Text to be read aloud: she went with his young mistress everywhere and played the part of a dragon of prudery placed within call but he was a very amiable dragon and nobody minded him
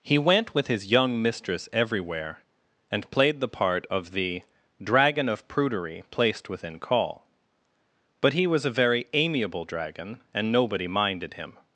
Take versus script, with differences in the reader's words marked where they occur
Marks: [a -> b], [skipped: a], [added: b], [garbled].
[she -> he] went with his young mistress everywhere and played the part of [a -> the] dragon of prudery placed within call but he was a very amiable dragon and nobody minded him